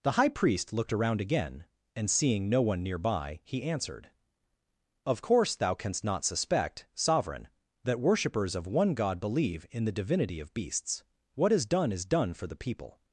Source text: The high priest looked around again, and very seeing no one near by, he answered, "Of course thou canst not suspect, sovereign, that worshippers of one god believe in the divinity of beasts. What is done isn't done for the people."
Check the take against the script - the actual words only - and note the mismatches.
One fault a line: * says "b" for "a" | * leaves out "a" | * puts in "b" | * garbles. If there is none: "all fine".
* leaves out "very"
* says "is" for "isn't"